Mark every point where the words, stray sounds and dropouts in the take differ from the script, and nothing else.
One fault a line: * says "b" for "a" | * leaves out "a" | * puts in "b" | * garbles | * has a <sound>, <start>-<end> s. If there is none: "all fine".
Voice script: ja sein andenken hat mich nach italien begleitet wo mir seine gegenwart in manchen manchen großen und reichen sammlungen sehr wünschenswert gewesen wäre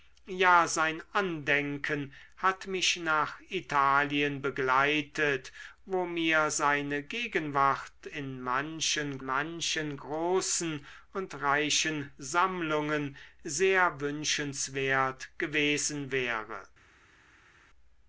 all fine